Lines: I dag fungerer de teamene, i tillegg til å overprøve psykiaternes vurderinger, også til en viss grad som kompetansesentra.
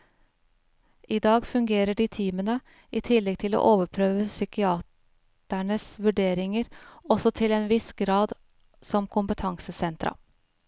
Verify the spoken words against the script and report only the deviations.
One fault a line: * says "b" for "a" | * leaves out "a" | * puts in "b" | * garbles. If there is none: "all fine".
all fine